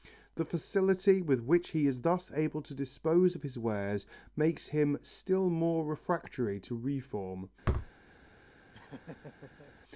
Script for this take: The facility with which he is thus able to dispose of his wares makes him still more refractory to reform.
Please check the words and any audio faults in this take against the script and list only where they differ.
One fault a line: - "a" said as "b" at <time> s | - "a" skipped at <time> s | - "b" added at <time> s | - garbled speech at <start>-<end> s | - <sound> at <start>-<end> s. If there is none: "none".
- thud at 7.6-7.9 s
- laugh at 8.7-9.7 s